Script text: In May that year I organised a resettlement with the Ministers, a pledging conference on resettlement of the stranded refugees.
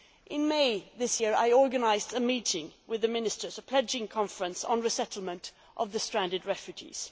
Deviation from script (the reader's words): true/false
true